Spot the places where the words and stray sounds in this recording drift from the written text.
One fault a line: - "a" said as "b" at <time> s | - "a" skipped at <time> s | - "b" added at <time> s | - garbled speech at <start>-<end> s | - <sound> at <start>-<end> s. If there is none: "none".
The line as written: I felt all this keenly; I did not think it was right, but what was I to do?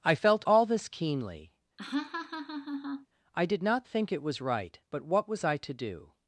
- laugh at 1.8-3.1 s